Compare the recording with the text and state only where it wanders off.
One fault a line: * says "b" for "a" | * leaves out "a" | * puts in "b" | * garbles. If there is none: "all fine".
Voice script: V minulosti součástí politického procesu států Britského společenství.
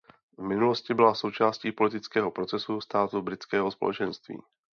* puts in "byla"